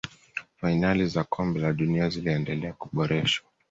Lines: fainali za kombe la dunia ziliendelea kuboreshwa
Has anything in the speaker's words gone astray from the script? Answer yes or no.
no